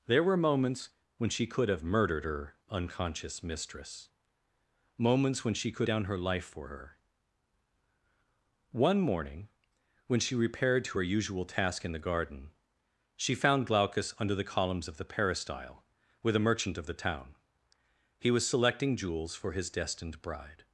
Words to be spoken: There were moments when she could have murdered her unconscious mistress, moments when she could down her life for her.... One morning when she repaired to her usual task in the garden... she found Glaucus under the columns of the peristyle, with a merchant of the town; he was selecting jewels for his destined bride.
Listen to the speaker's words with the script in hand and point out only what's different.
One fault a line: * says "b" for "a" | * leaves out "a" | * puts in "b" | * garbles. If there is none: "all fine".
all fine